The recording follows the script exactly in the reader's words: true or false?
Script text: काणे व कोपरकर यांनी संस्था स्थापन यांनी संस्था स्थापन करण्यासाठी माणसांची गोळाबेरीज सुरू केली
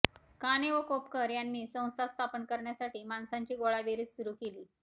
false